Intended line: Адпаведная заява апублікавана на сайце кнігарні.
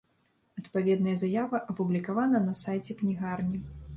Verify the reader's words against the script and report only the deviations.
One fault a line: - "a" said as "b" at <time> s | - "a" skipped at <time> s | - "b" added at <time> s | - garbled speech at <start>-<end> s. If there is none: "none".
none